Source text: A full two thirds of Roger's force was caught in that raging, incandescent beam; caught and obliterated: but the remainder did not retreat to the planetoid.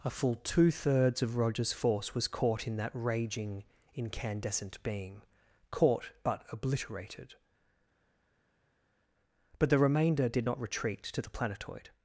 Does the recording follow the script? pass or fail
fail